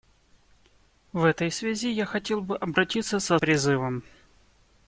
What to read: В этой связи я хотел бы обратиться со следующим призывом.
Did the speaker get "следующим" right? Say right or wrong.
wrong